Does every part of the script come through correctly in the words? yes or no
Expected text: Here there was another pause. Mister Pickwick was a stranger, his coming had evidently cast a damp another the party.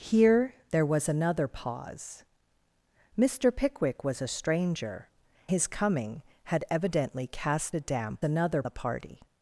yes